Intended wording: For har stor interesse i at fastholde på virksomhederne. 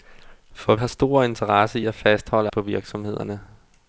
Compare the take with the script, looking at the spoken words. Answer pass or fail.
pass